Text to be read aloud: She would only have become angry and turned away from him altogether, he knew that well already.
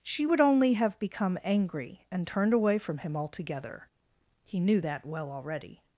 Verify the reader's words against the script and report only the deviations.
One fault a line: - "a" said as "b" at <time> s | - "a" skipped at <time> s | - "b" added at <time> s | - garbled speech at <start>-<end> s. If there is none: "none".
none